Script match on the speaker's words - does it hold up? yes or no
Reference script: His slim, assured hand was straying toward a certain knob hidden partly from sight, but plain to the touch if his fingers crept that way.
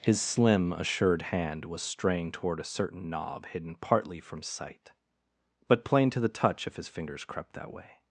yes